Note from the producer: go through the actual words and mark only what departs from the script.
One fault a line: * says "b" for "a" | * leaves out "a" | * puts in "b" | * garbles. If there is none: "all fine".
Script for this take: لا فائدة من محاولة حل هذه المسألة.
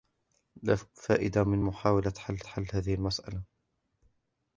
* puts in "حل"